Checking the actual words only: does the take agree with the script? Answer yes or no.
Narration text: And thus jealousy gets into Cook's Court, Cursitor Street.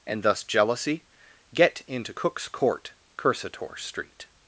no